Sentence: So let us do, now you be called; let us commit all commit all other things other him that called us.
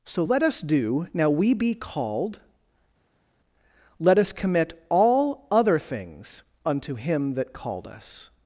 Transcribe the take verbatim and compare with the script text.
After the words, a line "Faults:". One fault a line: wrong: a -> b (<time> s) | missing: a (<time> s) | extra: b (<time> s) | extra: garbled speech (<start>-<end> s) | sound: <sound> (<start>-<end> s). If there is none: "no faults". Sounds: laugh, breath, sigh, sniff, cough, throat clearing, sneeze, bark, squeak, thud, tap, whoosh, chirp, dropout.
So let us do, now we be called; let us commit all other things unto him that called us.
Faults:
wrong: you -> we (1.3 s)
missing: commit all (5.5 s)
wrong: other -> unto (6.7 s)